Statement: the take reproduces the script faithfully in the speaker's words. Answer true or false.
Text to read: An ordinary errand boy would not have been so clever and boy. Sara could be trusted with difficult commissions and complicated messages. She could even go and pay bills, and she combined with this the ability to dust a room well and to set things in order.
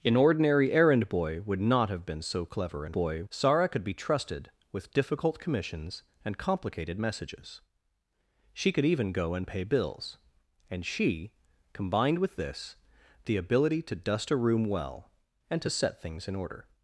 true